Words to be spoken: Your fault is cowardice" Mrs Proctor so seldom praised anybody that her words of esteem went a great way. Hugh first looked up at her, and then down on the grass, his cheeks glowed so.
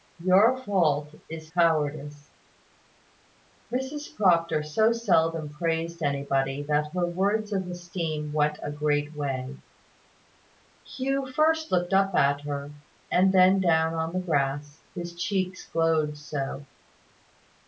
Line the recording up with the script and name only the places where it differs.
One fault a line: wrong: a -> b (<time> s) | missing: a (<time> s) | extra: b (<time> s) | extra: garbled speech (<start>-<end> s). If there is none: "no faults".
no faults